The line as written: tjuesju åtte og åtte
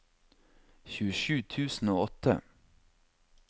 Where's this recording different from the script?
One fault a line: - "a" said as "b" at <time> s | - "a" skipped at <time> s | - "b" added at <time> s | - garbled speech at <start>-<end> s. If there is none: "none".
- "åtte" said as "tusen" at 1.5 s